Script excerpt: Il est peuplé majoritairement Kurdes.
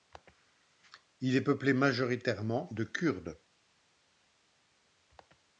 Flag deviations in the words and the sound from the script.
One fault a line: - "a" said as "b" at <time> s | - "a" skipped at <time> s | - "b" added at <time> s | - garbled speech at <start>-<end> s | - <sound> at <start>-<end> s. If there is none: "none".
- "de" added at 2.7 s